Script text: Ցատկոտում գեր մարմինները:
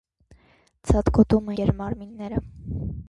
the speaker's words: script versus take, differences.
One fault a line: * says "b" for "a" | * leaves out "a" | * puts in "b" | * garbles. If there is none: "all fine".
all fine